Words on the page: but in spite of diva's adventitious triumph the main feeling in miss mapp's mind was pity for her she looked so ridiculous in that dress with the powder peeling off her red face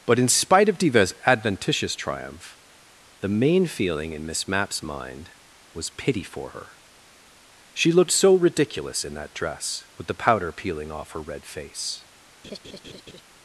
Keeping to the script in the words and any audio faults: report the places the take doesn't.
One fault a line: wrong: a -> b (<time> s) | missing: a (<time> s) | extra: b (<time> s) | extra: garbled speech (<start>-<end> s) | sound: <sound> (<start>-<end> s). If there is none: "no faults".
sound: laugh (12.4-13.2 s)